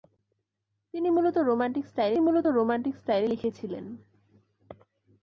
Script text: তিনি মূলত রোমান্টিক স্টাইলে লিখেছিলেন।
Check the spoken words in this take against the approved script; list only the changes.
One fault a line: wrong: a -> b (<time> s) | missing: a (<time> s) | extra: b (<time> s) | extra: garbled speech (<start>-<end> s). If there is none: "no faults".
extra: মূলত রোমান্টিক স্টাইলে (2.2 s)